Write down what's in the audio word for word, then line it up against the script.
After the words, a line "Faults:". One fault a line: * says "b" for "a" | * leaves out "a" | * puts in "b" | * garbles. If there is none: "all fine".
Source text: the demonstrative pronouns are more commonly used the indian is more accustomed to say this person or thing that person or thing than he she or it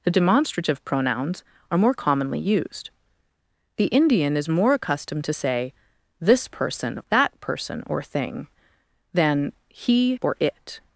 the demonstrative pronouns are more commonly used the indian is more accustomed to say this person that person or thing than he or it
Faults:
* leaves out "or thing"
* leaves out "she"